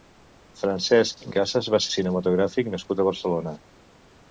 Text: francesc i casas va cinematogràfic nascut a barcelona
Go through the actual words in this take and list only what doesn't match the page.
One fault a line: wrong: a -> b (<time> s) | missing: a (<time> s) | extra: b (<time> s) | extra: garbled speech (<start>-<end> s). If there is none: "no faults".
no faults